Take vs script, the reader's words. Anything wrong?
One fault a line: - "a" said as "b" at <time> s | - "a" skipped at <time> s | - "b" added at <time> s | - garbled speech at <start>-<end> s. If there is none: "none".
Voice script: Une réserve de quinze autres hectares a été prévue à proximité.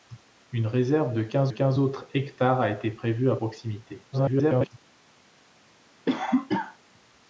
- "quinze" added at 1.5 s
- garbled speech at 4.1-4.7 s